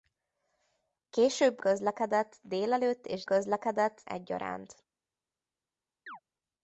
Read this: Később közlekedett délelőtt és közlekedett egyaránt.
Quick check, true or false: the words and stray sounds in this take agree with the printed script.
false